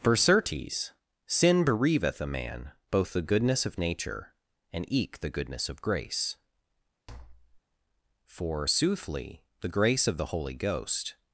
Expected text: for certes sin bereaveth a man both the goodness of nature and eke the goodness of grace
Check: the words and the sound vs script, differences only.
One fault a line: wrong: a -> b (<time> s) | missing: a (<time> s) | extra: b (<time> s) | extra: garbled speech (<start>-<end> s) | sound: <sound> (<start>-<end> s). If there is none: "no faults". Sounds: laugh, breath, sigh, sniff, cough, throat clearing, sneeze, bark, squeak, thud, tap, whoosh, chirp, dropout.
sound: tap (7.1-7.6 s)
extra: for soothly the grace of the holy ghost (8.2 s)